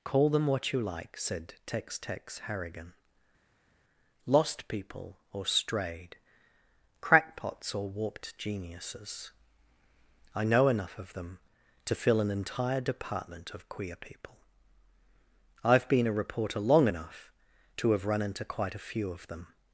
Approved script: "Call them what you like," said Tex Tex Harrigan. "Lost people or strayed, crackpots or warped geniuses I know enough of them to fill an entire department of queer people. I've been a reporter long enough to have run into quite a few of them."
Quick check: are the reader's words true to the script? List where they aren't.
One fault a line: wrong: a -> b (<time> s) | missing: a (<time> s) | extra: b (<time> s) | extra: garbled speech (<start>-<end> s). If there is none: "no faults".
no faults